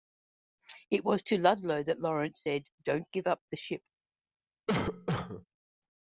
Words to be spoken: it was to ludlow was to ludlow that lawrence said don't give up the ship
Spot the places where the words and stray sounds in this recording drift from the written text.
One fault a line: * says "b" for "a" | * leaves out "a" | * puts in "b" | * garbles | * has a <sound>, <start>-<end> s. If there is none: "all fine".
* leaves out "was to ludlow"
* has a cough, 4.7-5.5 s